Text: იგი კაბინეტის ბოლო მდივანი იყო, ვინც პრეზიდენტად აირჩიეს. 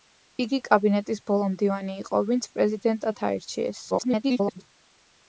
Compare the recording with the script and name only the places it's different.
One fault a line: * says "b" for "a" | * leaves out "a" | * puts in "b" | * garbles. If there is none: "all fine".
* garbles